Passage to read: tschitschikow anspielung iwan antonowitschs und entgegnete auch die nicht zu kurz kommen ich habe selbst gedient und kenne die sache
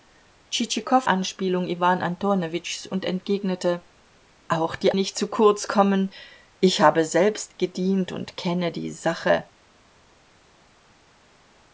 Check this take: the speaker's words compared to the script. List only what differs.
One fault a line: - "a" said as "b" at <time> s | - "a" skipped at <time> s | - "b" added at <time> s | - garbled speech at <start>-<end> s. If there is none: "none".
none